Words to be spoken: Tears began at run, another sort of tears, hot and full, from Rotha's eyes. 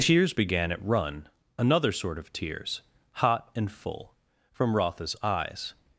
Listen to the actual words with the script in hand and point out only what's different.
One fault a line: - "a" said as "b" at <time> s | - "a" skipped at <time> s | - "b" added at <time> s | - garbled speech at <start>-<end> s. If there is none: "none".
none